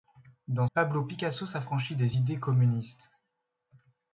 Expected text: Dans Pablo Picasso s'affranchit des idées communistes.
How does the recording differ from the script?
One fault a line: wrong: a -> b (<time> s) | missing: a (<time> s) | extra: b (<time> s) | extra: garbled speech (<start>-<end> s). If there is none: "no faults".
no faults